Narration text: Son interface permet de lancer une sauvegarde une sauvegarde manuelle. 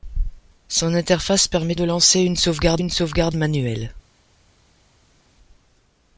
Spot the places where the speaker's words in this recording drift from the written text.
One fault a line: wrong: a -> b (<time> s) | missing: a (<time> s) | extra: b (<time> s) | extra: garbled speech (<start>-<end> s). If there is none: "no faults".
no faults